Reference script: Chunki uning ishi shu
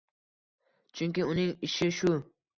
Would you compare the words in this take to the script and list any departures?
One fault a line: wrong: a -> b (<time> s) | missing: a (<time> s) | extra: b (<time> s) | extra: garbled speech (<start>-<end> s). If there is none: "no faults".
no faults